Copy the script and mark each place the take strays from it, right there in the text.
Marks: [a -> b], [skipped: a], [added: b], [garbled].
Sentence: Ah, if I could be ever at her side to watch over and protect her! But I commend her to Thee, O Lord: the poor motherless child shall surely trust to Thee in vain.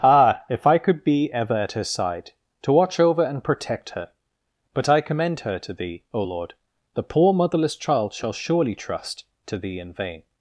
Ah, if I could be ever at her side to watch over and protect her! But I commend her to Thee, O Lord: the poor motherless child shall surely trust to Thee in vain.